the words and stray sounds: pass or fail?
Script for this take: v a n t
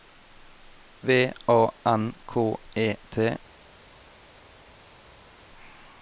fail